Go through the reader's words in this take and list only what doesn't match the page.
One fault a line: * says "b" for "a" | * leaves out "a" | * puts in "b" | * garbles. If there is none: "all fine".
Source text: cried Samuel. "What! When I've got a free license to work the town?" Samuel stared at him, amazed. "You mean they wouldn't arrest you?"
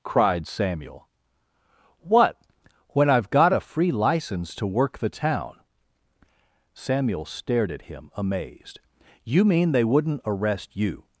all fine